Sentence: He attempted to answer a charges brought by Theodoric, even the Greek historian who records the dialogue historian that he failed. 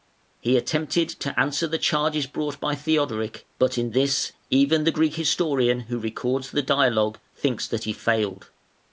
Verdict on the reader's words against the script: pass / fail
fail